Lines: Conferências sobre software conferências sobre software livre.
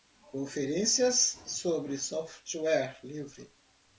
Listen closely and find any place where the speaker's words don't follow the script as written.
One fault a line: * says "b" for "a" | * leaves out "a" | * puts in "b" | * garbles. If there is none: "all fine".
* leaves out "conferências sobre software"